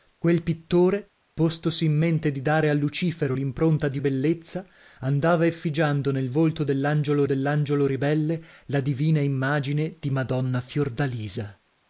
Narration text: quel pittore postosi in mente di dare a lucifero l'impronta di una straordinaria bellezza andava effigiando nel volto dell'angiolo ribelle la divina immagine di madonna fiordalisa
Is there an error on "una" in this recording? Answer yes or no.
yes